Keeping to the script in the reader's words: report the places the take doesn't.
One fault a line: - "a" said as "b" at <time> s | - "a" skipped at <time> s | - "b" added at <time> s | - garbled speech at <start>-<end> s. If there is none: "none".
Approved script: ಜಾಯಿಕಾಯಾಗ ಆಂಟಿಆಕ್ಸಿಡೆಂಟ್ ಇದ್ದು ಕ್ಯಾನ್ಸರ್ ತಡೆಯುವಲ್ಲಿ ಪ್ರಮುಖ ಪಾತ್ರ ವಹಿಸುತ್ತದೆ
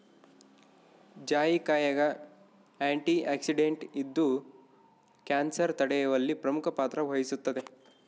none